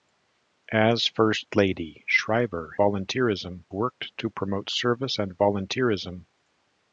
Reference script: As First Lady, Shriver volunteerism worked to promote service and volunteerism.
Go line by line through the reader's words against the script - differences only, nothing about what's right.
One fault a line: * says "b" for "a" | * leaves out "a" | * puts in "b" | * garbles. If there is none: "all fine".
all fine